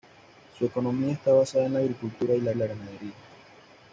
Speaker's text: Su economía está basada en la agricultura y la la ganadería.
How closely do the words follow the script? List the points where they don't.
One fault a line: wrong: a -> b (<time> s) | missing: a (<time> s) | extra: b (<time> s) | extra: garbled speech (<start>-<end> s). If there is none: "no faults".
no faults